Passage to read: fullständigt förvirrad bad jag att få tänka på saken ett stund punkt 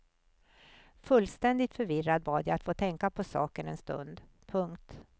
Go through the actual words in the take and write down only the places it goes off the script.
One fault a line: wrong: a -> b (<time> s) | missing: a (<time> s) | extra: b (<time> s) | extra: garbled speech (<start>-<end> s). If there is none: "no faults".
wrong: ett -> en (3.7 s)